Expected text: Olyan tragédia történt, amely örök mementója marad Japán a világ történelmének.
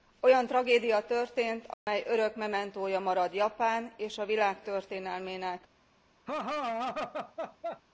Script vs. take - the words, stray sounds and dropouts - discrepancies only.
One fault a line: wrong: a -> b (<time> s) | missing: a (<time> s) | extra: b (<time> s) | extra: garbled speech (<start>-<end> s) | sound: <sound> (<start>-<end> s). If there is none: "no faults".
sound: dropout (1.7-1.9 s)
extra: és (4.0 s)
sound: laugh (6.3-7.8 s)